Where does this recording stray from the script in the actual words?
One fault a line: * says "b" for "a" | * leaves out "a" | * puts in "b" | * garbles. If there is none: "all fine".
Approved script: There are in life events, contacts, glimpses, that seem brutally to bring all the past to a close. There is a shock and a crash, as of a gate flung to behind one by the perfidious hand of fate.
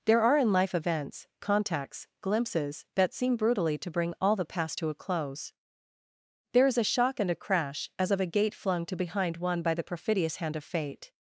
all fine